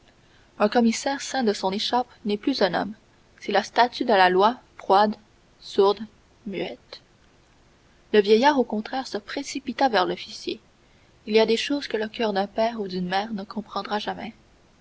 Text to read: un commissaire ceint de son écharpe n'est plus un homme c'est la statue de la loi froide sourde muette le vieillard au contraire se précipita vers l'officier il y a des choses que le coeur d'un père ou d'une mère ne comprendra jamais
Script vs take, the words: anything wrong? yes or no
no